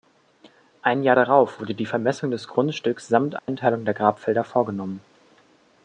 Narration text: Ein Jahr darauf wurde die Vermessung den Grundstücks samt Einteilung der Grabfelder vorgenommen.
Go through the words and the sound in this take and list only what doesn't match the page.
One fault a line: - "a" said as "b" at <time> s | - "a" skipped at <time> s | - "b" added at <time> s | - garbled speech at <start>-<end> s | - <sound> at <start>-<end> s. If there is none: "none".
- "den" said as "des" at 2.3 s
- dropout at 3.4-3.5 s